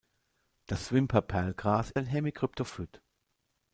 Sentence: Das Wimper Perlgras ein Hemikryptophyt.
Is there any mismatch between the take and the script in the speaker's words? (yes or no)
no